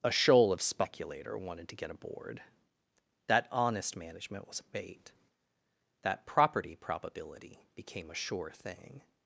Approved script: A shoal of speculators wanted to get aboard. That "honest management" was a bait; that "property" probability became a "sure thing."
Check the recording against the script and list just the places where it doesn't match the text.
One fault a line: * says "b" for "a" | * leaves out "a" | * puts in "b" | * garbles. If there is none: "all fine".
* says "speculator" for "speculators"